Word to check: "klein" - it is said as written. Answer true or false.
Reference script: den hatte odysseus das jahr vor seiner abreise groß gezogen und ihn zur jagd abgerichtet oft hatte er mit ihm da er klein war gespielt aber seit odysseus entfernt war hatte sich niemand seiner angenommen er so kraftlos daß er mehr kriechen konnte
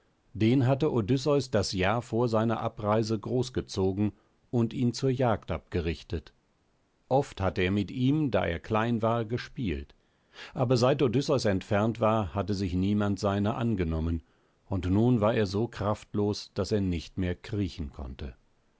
true